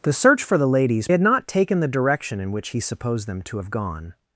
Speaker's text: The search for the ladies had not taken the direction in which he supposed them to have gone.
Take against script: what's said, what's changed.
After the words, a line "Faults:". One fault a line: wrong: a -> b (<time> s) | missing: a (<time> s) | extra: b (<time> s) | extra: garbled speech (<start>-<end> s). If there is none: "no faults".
The search for the ladies had not taken the direction in which he supposed them to have gone.
Faults:
no faults